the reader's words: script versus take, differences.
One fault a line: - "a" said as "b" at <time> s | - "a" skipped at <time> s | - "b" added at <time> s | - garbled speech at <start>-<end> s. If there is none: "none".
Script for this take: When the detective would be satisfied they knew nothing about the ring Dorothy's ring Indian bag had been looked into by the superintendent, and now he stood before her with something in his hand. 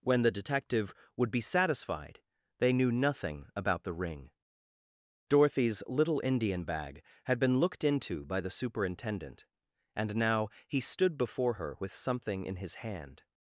- "ring" said as "little" at 5.8 s